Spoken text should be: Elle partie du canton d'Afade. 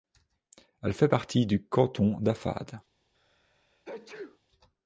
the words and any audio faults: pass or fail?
fail